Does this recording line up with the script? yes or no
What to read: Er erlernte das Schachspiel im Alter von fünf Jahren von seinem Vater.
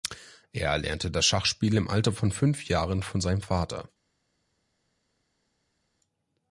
yes